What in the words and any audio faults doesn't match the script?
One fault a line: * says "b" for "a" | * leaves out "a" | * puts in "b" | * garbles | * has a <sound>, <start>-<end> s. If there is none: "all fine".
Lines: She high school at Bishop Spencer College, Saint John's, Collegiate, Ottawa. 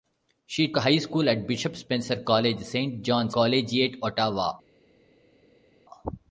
all fine